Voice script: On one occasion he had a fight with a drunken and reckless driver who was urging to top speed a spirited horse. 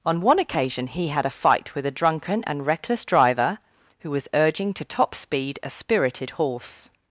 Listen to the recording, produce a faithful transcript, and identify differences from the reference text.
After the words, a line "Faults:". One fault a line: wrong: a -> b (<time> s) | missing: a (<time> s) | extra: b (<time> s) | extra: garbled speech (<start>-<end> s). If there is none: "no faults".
On one occasion he had a fight with a drunken and reckless driver who was urging to top speed a spirited horse.
Faults:
no faults